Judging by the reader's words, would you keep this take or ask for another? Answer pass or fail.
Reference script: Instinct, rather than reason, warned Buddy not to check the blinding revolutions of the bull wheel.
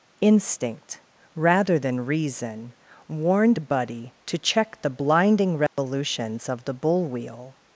fail